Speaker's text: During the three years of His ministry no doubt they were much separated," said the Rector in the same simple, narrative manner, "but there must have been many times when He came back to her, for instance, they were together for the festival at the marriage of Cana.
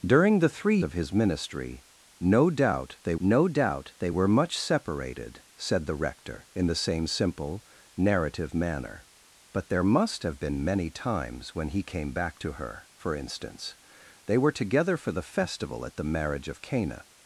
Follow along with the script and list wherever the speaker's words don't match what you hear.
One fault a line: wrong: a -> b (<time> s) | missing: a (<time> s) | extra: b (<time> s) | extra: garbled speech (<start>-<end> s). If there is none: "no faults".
missing: years (0.8 s)
extra: no doubt they (3.2 s)